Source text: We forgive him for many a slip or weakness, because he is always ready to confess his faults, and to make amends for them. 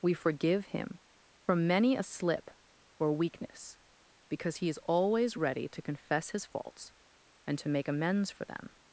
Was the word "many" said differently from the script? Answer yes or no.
no